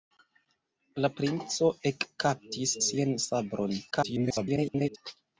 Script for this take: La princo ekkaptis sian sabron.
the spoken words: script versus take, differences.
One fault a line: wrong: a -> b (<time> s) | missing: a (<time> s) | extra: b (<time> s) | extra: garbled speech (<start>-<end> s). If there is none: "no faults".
extra: garbled speech (3.9-5.0 s)